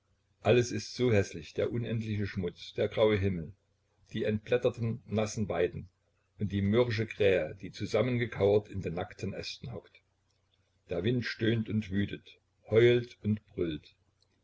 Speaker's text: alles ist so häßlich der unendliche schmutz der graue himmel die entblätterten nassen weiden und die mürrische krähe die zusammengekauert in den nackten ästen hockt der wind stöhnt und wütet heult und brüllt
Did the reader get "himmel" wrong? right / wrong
right